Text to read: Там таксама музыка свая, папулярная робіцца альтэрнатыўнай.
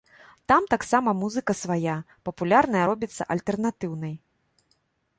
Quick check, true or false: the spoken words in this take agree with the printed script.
true